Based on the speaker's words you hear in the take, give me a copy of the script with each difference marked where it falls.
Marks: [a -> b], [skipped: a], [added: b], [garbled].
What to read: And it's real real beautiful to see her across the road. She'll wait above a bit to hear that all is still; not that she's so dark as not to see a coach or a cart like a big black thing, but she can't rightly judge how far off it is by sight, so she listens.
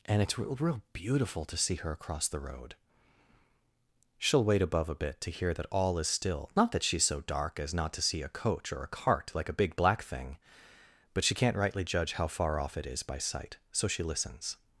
And it's real real beautiful to see her across the road. She'll wait above a bit to hear that all is still; not that she's so dark as not to see a coach or a cart like a big black thing, but she can't rightly judge how far off it is by sight, so she listens.